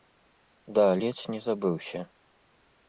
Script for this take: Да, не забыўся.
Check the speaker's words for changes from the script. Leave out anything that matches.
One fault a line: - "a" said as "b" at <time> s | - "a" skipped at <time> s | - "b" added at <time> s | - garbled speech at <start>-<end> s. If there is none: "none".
- "ледзь" added at 1.0 s